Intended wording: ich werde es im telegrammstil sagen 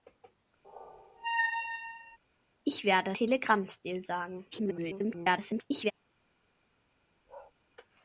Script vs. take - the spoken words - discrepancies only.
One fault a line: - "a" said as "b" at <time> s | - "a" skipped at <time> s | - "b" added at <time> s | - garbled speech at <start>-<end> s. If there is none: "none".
- "es im" skipped at 3.1 s
- garbled speech at 4.5-5.9 s